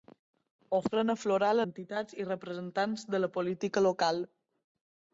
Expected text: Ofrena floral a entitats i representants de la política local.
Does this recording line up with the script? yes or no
yes